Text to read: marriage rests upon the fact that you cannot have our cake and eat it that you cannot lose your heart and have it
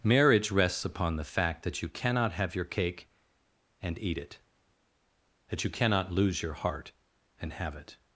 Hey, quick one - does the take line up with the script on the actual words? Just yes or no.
no